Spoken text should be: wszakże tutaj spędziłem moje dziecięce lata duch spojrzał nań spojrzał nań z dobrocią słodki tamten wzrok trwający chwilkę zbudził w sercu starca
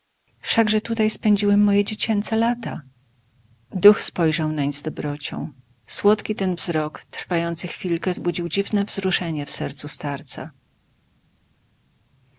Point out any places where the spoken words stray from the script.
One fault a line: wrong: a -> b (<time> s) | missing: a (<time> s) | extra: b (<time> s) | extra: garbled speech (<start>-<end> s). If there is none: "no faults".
missing: spojrzał nań (4.7 s)
wrong: tamten -> ten (6.3 s)
extra: dziwne wzruszenie (8.5 s)